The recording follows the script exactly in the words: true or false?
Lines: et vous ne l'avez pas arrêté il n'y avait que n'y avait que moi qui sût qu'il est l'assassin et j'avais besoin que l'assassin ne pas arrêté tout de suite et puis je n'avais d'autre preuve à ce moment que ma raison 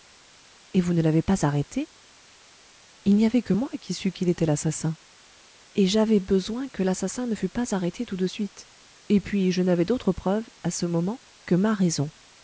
false